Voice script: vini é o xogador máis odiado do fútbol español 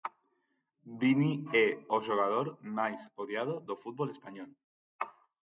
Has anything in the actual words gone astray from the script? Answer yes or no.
no